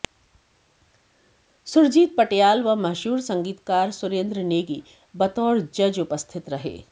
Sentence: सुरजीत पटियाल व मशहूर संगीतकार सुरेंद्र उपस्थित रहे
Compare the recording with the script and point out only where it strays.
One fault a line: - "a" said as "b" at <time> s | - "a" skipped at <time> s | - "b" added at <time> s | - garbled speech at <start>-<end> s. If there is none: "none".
- "नेगी बतौर जज" added at 4.5 s